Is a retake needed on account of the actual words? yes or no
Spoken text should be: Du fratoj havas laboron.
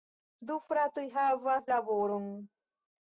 no